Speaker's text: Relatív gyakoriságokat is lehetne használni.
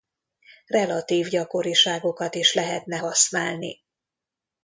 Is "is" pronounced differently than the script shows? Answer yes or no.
no